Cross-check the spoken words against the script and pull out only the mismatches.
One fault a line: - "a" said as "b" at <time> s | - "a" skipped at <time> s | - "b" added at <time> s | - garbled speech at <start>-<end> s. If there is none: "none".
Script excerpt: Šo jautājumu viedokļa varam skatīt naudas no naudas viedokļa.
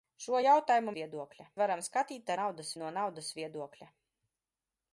none